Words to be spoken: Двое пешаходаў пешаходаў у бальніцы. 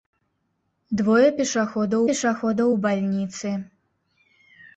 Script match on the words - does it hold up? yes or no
yes